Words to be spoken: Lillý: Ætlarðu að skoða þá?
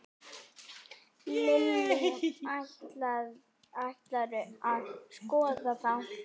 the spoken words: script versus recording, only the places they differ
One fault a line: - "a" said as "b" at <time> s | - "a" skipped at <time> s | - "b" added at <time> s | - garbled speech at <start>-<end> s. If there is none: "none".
none